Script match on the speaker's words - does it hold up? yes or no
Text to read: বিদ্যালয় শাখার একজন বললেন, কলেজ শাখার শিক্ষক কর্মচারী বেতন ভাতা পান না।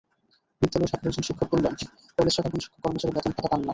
no